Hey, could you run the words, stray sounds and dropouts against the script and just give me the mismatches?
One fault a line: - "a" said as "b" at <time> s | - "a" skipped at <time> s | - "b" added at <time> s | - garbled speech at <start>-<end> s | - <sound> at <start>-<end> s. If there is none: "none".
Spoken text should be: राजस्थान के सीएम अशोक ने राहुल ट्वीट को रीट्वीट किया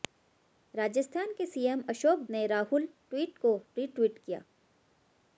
none